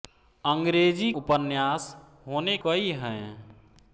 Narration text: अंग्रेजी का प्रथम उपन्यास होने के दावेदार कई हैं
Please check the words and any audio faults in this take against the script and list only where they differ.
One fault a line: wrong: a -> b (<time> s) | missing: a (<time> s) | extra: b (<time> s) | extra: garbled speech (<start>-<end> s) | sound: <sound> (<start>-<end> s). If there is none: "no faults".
missing: का प्रथम (1.1 s)
missing: के दावेदार (2.6 s)